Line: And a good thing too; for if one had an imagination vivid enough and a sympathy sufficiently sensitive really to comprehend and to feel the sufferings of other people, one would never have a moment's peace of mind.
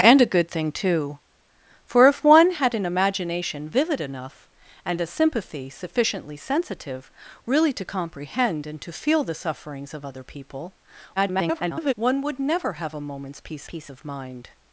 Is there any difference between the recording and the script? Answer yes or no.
yes